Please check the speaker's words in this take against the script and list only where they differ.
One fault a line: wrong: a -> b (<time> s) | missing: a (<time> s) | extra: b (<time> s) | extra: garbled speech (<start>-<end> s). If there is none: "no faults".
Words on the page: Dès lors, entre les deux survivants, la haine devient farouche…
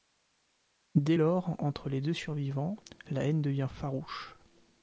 no faults